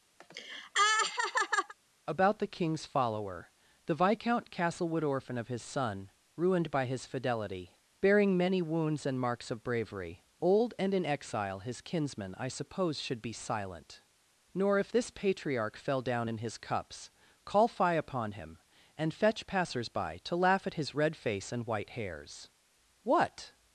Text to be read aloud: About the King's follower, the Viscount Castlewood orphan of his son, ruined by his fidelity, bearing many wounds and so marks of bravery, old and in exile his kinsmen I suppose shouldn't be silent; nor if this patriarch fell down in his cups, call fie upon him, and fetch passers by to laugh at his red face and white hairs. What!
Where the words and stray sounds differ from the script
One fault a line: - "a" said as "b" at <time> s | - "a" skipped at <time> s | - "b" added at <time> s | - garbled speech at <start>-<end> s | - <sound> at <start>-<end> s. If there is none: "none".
- laugh at 0.2-1.7 s
- "so" skipped at 9.2 s
- "shouldn't" said as "should" at 13.0 s